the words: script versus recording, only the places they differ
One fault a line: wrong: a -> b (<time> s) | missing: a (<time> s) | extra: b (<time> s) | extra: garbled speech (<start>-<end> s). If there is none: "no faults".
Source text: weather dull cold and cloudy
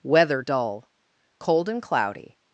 no faults